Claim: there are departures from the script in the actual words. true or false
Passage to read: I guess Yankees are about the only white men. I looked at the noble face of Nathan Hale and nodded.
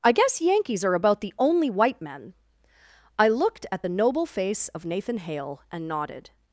false